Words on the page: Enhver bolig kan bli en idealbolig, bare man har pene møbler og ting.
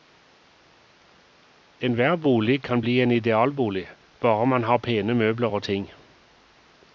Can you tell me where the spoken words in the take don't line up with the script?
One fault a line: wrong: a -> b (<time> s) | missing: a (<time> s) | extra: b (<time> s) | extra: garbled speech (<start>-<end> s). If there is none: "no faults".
no faults